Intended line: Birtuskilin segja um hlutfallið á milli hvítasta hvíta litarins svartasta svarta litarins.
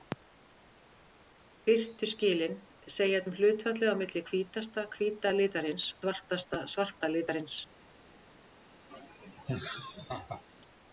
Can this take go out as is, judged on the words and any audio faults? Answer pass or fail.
fail